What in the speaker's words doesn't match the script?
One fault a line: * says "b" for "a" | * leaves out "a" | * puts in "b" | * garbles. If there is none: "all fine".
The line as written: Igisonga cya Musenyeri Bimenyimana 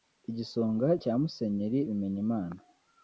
all fine